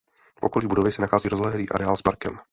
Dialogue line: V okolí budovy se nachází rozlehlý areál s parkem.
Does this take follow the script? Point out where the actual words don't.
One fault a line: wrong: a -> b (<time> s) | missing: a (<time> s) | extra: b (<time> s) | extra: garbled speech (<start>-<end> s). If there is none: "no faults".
no faults